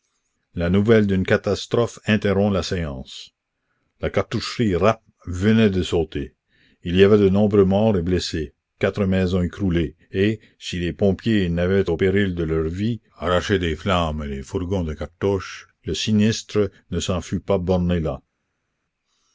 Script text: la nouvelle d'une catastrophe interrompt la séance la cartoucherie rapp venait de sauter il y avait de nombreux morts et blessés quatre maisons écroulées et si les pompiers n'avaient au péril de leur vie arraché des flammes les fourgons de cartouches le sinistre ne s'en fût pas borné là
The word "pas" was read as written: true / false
true